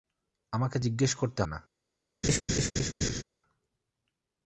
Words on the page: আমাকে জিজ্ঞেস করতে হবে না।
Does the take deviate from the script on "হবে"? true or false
true